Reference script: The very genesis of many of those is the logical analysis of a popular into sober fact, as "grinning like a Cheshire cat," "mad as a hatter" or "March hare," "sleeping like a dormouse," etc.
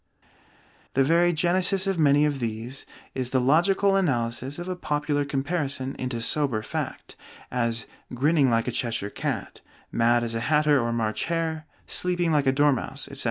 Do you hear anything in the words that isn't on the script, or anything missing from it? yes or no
yes